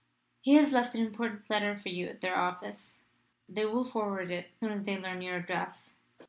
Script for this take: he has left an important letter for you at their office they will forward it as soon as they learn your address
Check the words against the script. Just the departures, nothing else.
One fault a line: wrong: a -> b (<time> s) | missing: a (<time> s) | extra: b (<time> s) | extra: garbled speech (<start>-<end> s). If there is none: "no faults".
missing: as (4.5 s)